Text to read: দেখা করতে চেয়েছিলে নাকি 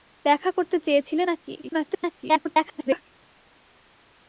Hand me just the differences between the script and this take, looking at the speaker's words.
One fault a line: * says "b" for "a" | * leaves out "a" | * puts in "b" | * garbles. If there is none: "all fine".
* garbles